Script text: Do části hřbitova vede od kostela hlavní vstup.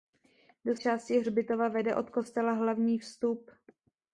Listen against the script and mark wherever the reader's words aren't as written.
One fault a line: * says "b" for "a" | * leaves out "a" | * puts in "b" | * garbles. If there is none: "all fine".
all fine